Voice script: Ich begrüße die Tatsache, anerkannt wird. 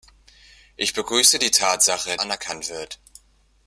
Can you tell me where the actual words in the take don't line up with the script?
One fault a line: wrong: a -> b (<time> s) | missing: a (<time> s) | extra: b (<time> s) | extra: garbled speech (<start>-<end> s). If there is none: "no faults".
no faults